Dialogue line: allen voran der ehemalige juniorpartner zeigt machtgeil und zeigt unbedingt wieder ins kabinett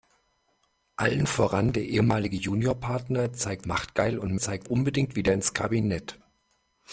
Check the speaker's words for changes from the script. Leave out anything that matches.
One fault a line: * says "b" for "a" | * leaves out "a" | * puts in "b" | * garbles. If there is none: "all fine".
all fine